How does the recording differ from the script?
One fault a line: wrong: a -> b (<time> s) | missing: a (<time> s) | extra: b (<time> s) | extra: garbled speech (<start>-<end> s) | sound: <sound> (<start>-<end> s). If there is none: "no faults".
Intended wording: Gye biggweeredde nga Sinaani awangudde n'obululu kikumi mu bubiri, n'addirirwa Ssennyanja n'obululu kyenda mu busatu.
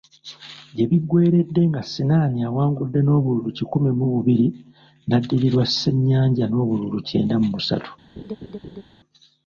sound: laugh (8.2-8.8 s)